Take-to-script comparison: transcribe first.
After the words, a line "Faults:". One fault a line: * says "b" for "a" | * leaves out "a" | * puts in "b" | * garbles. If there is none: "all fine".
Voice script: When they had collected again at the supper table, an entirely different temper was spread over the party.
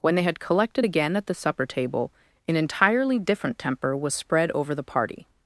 When they had collected again at the supper table, an entirely different temper was spread over the party.
Faults:
all fine